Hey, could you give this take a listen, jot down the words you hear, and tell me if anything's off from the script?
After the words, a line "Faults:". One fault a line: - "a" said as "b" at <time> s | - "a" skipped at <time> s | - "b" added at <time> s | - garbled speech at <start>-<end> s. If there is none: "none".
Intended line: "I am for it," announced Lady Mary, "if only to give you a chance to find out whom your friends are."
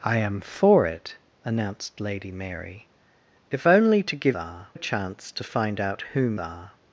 "I am for it," announced Lady Mary, "if only to give are a chance to find out whom are."
Faults:
- "you" said as "are" at 4.3 s
- "your friends" skipped at 6.4 s